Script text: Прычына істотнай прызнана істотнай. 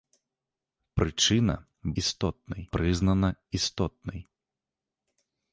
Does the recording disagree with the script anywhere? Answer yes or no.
no